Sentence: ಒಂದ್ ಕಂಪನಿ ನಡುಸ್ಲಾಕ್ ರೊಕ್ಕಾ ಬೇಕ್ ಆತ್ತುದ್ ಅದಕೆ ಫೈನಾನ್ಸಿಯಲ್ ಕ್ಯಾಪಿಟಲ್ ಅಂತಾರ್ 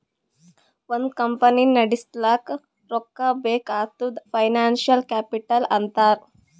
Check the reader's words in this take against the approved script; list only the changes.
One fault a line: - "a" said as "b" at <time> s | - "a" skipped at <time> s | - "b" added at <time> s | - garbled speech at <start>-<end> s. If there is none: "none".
- "ಅದಕೆ" skipped at 4.2 s